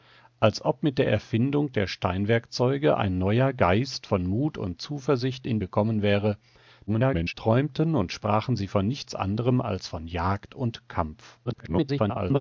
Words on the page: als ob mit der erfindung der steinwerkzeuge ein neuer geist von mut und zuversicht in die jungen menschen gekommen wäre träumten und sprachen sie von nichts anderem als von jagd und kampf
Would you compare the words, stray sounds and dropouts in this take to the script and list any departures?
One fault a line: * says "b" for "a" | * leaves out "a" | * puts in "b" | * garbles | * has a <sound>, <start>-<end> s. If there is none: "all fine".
* leaves out "die jungen menschen"
* garbles
* garbles